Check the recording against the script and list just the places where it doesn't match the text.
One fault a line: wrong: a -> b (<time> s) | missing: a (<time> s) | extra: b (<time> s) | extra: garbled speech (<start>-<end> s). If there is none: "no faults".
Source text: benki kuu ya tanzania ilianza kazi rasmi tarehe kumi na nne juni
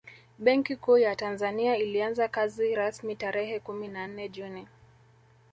no faults